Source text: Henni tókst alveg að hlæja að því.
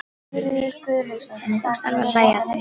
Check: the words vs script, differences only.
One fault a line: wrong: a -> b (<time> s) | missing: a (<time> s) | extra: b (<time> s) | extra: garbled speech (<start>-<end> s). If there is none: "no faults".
no faults